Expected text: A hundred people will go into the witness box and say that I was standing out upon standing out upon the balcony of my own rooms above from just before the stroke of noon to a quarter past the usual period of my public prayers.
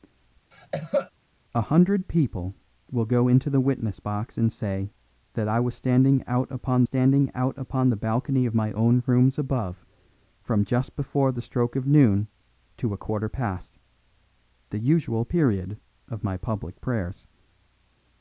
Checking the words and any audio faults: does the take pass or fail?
fail